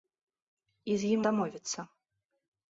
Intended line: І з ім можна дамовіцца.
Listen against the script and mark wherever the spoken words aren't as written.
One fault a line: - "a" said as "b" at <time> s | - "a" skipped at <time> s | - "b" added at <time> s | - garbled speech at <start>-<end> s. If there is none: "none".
- "можна" skipped at 1.2 s